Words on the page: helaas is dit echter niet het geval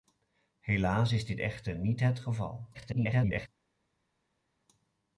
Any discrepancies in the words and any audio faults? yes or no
yes